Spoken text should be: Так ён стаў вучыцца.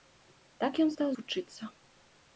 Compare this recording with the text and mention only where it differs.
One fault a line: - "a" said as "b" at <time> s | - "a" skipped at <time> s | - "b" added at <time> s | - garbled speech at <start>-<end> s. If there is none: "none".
none